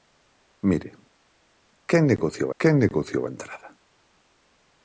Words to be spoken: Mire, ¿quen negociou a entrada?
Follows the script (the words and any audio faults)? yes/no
no